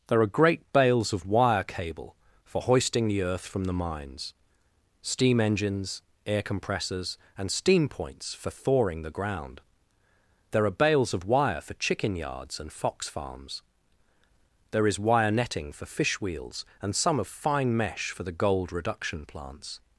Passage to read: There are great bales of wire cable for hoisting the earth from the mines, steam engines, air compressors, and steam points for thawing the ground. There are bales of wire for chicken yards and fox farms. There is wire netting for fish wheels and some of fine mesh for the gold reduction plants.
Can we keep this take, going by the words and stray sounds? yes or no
yes